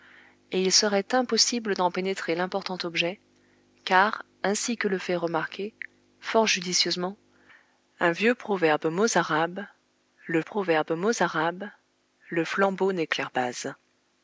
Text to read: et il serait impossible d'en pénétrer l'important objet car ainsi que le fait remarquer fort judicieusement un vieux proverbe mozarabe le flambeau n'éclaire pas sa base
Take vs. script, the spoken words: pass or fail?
fail